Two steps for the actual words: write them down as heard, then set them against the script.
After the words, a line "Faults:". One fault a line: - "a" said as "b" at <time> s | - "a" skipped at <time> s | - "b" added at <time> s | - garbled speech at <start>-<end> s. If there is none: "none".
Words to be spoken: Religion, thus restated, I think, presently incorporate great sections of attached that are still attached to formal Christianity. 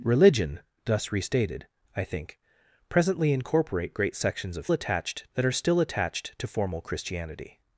Religion, thus restated, I think, presently incorporate great sections of attached that are still attached to formal Christianity.
Faults:
none